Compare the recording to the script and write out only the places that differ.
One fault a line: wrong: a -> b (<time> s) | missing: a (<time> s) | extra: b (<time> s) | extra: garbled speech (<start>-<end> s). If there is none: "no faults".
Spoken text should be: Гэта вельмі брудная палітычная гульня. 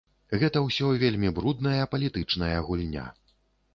extra: ўсё (0.7 s)